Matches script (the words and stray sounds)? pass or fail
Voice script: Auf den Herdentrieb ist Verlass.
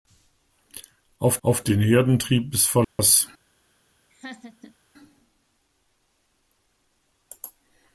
fail